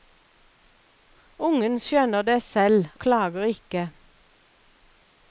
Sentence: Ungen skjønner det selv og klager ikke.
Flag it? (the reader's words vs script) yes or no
yes